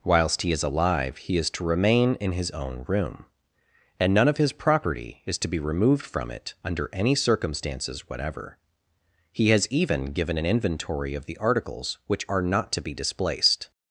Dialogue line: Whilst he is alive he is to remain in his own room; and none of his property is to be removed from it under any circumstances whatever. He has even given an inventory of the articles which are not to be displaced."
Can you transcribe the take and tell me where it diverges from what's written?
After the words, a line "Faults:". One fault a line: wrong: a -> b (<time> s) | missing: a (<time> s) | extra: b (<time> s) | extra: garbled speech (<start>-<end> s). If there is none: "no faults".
Whilst he is alive he is to remain in his own room; and none of his property is to be removed from it under any circumstances whatever. He has even given an inventory of the articles which are not to be displaced."
Faults:
no faults